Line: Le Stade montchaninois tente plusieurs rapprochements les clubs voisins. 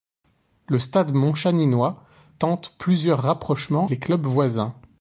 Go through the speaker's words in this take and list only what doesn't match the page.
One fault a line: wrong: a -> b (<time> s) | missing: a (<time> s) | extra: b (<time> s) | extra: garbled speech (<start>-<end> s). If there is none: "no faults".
no faults